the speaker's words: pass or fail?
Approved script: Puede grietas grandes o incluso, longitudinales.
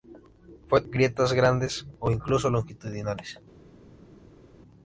pass